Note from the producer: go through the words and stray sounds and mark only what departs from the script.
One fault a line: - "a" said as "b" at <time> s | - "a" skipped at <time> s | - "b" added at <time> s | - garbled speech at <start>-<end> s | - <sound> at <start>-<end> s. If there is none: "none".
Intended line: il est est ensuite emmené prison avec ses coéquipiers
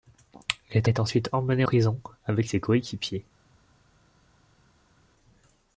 none